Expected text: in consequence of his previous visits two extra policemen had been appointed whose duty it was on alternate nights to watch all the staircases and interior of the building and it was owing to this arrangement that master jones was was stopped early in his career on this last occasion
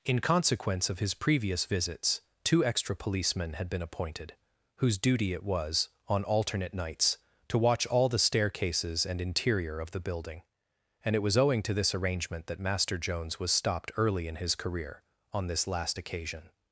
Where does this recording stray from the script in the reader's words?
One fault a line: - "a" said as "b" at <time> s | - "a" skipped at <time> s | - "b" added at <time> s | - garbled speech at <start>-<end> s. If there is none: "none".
- "was" skipped at 13.5 s